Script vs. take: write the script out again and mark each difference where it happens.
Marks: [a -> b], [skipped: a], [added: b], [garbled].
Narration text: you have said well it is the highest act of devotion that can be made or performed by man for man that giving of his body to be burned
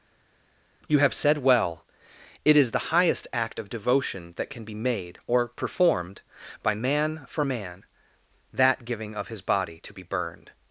you have said well it is the highest act of devotion that can be made or performed by man for man that giving of his body to be burned